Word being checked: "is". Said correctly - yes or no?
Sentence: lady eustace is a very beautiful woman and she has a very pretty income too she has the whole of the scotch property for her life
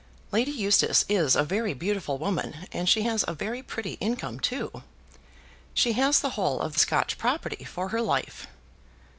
yes